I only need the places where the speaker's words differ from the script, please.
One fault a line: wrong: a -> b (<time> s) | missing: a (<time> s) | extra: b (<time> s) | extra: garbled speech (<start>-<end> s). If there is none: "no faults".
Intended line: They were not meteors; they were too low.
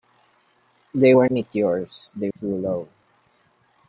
missing: not (1.3 s)
missing: were (2.3 s)